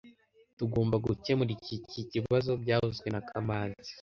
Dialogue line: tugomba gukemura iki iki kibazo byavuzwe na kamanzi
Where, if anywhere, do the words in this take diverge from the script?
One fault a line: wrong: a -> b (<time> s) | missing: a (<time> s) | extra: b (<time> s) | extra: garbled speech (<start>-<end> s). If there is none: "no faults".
no faults